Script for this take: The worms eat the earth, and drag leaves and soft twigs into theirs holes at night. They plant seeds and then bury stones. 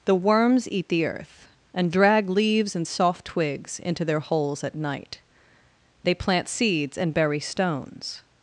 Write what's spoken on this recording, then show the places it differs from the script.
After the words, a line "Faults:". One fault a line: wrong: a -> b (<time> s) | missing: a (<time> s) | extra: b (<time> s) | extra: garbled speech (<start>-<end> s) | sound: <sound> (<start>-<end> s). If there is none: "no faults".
The worms eat the earth, and drag leaves and soft twigs into their holes at night. They plant seeds and bury stones.
Faults:
wrong: theirs -> their (4.0 s)
missing: then (7.1 s)